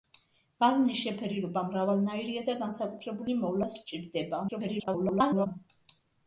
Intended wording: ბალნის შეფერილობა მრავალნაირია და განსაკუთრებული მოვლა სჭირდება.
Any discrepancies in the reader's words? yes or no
yes